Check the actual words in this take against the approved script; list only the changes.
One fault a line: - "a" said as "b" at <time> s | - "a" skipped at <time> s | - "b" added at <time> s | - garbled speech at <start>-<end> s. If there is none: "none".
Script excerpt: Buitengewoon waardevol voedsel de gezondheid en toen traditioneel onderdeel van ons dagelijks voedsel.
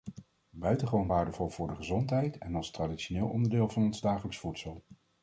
- "voedsel" said as "voor" at 1.5 s
- "toen" said as "als" at 2.5 s